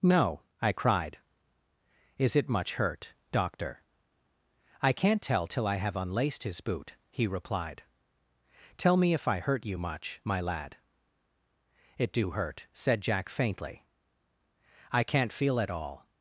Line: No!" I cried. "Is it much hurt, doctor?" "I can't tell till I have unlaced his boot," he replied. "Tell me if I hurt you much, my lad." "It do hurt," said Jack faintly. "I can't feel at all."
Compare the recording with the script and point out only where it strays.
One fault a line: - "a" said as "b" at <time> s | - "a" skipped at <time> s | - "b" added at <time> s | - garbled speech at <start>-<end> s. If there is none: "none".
none